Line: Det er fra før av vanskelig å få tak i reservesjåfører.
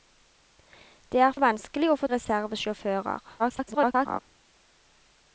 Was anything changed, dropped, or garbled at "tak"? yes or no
yes